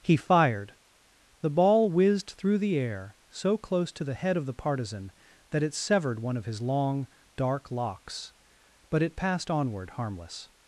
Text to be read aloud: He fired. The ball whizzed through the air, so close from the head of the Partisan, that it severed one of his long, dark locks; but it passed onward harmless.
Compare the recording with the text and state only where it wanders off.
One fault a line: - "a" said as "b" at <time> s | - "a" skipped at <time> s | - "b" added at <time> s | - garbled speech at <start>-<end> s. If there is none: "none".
- "from" said as "to" at 3.9 s